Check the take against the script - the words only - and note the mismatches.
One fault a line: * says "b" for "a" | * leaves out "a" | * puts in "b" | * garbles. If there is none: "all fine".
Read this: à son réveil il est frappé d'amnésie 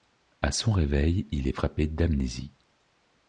all fine